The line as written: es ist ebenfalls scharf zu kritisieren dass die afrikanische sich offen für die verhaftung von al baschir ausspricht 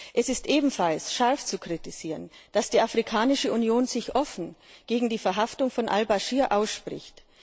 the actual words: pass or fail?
fail